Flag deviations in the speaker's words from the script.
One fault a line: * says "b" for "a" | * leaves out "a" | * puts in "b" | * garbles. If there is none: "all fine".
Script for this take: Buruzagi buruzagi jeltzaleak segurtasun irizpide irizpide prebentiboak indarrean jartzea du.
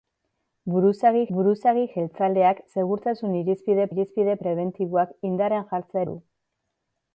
all fine